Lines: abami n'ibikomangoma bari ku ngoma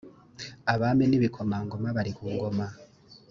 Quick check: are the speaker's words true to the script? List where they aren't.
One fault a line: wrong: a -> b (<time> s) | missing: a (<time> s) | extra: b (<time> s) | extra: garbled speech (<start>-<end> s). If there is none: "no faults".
no faults